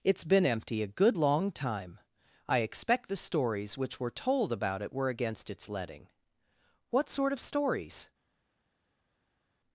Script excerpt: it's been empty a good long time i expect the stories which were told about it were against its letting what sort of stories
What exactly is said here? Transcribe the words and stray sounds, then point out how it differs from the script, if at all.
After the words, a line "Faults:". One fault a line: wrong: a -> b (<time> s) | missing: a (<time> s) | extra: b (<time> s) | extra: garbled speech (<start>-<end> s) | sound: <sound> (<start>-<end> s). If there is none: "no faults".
it's been empty a good long time i expect the stories which were told about it were against its letting what sort of stories
Faults:
no faults